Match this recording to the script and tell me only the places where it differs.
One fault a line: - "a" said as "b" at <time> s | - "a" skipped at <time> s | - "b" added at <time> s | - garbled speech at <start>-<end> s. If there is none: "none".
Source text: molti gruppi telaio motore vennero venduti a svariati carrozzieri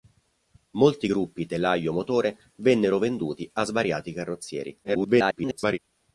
- garbled speech at 4.8-5.8 s